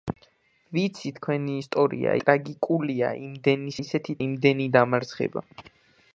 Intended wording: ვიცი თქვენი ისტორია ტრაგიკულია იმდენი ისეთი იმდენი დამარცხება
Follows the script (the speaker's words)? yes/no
yes